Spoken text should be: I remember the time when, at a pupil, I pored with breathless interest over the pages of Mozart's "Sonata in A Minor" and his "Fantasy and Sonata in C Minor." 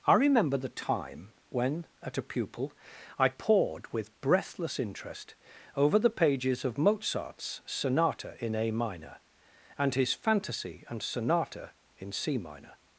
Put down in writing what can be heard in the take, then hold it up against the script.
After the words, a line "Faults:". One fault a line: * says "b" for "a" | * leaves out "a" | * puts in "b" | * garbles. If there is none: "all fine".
I remember the time when, at a pupil, I pored with breathless interest over the pages of Mozart's "Sonata in A Minor" and his "Fantasy and Sonata in C Minor."
Faults:
all fine